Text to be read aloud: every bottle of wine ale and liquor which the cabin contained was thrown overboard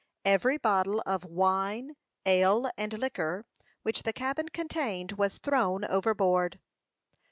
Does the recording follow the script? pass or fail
pass